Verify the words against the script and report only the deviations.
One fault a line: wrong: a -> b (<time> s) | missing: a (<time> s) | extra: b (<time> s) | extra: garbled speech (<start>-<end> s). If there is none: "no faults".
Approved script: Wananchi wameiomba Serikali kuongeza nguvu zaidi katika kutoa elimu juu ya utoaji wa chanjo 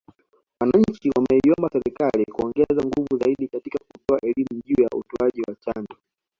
no faults